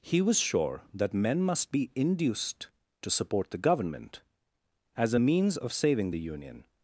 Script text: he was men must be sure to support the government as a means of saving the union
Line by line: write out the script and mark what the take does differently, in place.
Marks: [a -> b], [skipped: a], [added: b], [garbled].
he was [added: sure that] men must be [sure -> induced] to support the government as a means of saving the union